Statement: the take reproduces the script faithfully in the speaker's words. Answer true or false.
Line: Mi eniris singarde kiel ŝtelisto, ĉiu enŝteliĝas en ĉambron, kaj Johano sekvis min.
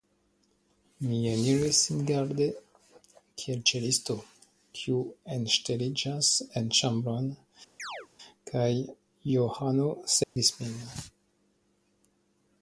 false